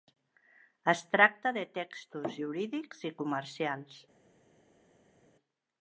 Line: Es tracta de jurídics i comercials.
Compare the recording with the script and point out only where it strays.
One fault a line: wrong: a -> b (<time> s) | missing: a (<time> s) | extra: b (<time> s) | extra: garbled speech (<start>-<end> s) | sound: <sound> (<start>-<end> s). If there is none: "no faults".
extra: textos (1.8 s)